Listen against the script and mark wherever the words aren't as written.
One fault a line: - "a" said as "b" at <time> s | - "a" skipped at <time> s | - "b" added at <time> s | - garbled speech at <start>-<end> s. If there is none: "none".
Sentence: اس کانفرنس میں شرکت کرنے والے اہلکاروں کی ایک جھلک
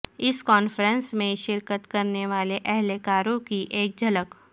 none